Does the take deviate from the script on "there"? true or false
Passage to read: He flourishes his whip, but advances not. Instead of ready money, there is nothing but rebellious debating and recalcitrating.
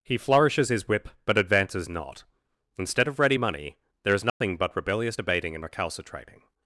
false